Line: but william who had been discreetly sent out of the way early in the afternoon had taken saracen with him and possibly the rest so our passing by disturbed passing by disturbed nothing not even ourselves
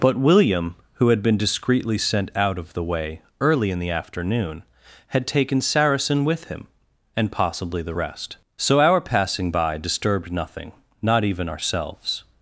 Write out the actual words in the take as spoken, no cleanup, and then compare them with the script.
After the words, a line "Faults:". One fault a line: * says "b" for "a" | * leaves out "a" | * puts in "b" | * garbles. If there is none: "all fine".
but william who had been discreetly sent out of the way early in the afternoon had taken saracen with him and possibly the rest so our passing by disturbed nothing not even ourselves
Faults:
* leaves out "passing by disturbed"